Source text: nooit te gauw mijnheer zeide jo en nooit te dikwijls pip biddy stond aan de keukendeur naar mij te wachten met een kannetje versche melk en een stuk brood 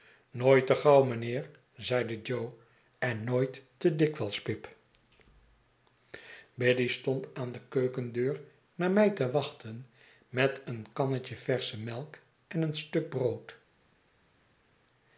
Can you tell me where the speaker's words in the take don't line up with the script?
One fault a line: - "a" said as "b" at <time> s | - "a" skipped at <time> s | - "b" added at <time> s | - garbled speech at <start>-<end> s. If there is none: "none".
none